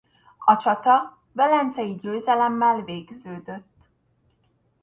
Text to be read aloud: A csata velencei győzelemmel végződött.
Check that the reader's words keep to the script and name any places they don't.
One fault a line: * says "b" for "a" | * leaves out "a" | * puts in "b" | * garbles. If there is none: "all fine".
all fine